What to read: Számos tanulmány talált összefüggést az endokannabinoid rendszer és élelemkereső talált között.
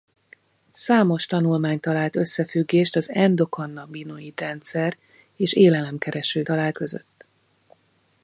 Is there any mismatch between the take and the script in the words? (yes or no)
no